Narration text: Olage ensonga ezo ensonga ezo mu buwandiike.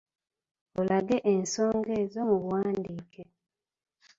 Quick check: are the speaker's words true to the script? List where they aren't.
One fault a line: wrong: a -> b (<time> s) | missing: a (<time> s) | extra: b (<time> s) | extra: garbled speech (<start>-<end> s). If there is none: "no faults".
missing: ensonga ezo (2.2 s)